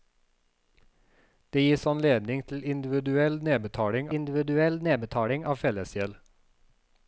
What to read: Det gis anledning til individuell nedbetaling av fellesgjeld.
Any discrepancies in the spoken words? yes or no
yes